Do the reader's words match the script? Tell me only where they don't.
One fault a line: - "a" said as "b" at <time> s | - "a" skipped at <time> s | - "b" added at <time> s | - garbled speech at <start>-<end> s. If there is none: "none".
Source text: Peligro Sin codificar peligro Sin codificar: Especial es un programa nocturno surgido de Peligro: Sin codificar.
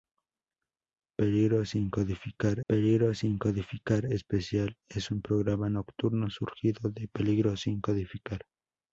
none